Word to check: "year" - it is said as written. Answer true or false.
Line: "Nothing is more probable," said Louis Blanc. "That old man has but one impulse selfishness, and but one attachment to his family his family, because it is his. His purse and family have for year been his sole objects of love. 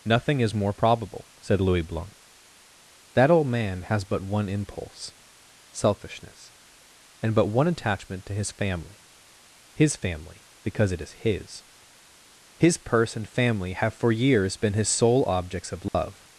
false